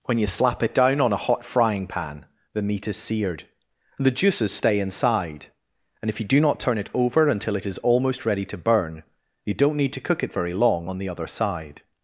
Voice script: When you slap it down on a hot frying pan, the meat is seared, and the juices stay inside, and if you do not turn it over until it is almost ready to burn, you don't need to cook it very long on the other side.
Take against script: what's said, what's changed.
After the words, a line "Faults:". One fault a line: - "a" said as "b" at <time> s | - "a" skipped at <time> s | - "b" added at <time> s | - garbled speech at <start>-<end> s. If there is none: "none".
When you slap it down on a hot frying pan, the meat is seared, and the juices stay inside, and if you do not turn it over until it is almost ready to burn, you don't need to cook it very long on the other side.
Faults:
none